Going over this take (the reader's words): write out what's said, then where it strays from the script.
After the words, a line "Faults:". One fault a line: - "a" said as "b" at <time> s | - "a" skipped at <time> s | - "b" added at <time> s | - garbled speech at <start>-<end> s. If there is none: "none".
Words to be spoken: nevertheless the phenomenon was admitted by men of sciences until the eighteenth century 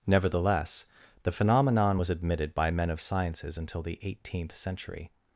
nevertheless the phenomenon was admitted by men of sciences until the eighteenth century
Faults:
none